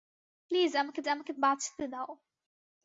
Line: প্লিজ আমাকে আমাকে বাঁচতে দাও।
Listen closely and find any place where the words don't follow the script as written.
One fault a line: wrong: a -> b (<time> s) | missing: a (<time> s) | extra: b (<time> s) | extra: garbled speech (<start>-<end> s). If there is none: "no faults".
no faults